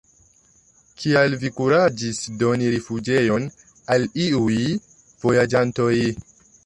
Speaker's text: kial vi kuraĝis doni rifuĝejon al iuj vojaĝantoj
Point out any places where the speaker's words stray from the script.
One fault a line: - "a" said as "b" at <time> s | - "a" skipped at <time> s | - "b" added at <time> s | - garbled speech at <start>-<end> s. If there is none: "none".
none